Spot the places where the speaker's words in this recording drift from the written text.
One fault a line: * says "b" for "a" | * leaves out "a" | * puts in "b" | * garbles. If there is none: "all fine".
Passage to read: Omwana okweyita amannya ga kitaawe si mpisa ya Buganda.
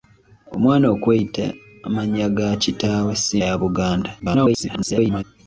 * leaves out "mpisa"
* garbles